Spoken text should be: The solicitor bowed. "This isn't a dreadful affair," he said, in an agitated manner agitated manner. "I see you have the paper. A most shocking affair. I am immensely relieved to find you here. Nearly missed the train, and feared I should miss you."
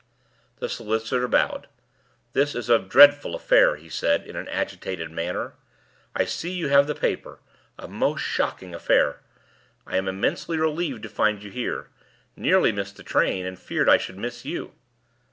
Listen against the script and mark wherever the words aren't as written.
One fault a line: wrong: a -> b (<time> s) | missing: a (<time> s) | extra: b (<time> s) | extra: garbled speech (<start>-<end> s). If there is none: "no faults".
wrong: isn't -> is (2.5 s)
missing: agitated manner (5.5 s)